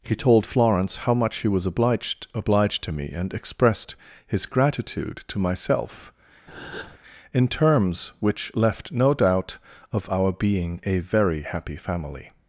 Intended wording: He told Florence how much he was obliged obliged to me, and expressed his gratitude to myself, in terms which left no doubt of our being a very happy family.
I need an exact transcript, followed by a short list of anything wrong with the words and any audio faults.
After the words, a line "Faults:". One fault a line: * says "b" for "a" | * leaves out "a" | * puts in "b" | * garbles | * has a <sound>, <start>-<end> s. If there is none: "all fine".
He told Florence how much he was obliged obliged to me, and expressed his gratitude to myself, in terms which left no doubt of our being a very happy family.
Faults:
* has a breath, 6.5-7.0 s